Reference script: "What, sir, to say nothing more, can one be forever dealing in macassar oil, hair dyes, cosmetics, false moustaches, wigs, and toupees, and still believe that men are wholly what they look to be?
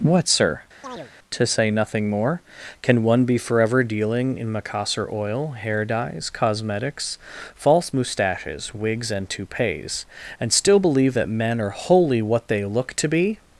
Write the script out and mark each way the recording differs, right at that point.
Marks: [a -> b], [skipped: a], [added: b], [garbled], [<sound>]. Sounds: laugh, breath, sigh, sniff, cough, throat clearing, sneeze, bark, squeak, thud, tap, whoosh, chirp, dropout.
"What, sir, [chirp] to say nothing more, can one be forever dealing in macassar oil, hair dyes, cosmetics, false moustaches, wigs, and toupees, and still believe that men are wholly what they look to be?